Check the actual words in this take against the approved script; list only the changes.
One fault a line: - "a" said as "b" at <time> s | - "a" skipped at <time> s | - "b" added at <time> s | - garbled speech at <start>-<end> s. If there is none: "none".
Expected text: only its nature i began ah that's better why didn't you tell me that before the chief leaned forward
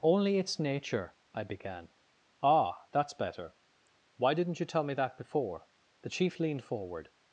none